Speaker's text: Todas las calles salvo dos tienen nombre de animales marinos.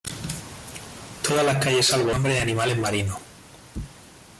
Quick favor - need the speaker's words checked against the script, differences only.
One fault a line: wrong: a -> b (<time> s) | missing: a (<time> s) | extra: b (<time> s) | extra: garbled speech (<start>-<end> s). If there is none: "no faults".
missing: dos tienen (2.1 s)